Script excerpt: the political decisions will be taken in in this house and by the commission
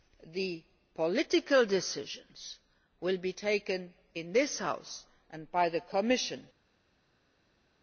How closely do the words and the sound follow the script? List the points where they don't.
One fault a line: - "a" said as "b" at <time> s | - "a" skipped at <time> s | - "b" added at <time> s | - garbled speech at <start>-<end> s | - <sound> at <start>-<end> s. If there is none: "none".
- "in" skipped at 4.3 s